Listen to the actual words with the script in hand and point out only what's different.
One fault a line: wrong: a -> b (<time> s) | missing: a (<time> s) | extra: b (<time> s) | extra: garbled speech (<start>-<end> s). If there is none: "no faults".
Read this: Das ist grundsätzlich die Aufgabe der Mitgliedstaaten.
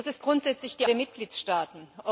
missing: Aufgabe (0.9 s)